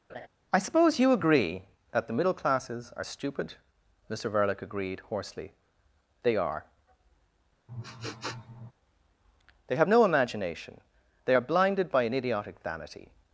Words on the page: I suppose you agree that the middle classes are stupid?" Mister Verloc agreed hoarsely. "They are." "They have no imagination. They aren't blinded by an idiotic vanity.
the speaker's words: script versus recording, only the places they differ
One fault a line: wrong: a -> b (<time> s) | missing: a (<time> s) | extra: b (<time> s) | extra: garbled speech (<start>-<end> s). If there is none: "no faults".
wrong: aren't -> are (11.3 s)